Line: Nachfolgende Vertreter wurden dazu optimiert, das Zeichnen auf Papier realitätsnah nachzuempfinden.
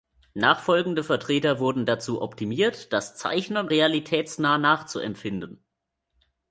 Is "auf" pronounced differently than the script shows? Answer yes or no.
yes